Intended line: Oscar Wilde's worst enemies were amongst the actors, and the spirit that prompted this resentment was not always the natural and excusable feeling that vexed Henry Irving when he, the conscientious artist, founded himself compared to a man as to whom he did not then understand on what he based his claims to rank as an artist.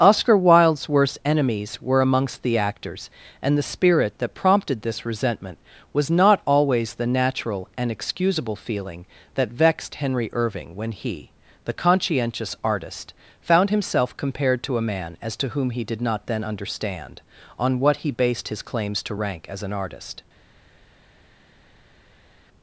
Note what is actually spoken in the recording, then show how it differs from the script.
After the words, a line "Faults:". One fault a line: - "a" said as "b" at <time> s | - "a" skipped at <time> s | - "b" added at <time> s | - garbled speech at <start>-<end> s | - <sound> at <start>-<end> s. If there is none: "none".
Oscar Wilde's worst enemies were amongst the actors, and the spirit that prompted this resentment was not always the natural and excusable feeling that vexed Henry Irving when he, the conscientious artist, found himself compared to a man as to whom he did not then understand on what he based his claims to rank as an artist.
Faults:
- "founded" said as "found" at 13.4 s